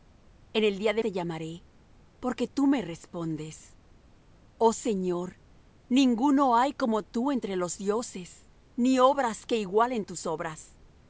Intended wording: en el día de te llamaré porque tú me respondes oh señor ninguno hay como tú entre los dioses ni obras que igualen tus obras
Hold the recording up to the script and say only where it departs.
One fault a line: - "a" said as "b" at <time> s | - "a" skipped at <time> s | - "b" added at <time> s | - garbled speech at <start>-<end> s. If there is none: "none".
none